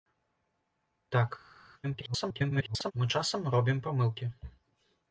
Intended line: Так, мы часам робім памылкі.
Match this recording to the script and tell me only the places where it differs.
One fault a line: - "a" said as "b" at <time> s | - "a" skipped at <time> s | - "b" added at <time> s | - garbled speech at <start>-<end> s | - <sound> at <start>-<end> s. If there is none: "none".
- garbled speech at 1.8-2.9 s